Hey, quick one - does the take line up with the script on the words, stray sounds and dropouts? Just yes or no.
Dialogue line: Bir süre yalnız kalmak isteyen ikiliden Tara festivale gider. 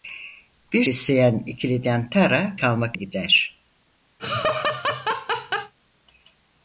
no